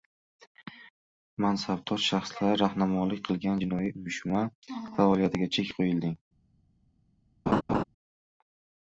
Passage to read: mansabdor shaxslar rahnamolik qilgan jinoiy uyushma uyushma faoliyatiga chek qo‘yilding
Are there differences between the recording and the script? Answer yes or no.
yes